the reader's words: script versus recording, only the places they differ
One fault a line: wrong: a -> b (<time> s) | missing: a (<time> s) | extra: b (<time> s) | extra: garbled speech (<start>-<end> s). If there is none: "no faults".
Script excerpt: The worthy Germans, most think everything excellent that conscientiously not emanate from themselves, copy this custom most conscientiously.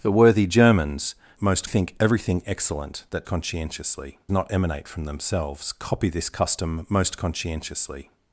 no faults